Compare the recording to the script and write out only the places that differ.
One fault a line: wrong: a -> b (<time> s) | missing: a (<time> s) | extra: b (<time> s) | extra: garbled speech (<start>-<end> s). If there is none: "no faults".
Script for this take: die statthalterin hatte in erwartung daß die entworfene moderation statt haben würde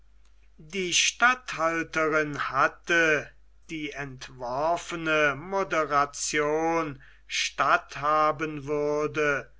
missing: in erwartung daß (3.3 s)